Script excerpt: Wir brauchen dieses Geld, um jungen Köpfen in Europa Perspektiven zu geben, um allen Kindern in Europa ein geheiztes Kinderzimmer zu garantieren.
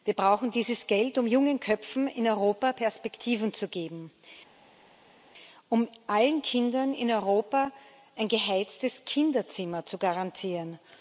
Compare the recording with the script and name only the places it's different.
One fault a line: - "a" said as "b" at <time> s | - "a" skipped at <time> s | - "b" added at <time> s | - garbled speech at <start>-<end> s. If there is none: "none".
none